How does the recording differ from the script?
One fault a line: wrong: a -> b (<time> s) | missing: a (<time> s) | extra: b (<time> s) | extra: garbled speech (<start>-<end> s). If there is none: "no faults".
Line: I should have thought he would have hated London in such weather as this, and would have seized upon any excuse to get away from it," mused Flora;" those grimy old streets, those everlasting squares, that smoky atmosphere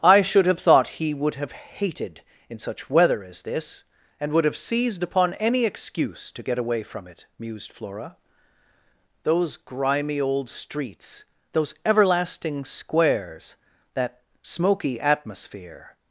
missing: London (2.2 s)